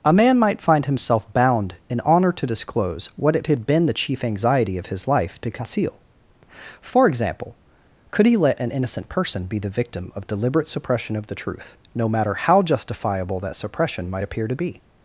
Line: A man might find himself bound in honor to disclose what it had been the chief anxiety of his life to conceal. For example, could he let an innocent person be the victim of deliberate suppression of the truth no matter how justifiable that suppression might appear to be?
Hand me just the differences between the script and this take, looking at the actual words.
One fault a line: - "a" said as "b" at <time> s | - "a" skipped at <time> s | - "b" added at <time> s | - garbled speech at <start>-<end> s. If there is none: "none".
none